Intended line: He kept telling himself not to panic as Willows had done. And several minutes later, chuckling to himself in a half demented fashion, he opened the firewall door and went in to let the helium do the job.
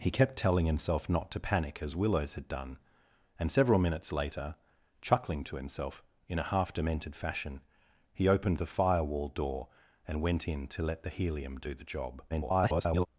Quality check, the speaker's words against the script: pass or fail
fail